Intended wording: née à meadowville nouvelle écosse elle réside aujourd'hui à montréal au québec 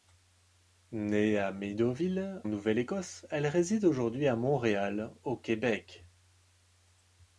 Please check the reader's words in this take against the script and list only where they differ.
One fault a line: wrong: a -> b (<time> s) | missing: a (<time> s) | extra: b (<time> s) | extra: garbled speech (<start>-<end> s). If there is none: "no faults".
no faults